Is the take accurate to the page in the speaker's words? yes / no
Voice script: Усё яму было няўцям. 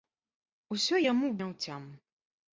no